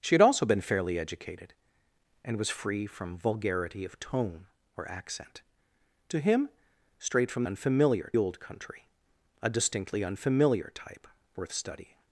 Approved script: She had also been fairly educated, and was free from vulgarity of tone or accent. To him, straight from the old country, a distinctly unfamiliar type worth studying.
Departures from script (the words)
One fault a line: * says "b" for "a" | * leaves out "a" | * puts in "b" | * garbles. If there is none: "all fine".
* says "unfamiliar" for "the"